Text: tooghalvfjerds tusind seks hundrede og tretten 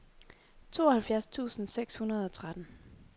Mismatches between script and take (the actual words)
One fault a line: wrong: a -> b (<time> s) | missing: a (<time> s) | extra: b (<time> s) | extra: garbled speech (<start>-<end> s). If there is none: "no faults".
no faults